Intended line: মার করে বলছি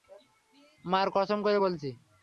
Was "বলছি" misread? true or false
false